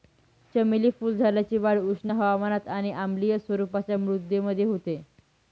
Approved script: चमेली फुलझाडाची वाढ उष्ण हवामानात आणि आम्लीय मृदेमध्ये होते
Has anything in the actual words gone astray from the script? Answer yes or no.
yes